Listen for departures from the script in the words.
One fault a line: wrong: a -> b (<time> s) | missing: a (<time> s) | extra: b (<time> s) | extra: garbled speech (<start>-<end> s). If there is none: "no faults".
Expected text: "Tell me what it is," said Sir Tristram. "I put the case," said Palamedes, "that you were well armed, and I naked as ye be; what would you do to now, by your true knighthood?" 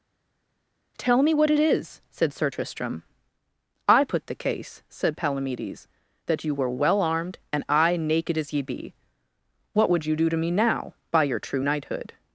extra: me (10.4 s)